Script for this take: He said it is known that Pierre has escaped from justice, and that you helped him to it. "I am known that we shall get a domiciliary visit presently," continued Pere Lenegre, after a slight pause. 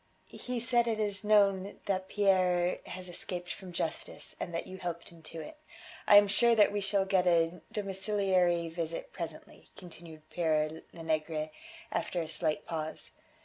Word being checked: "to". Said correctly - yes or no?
yes